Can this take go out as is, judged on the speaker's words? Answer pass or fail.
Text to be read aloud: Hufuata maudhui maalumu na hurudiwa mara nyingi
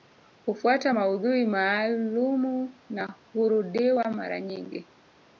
pass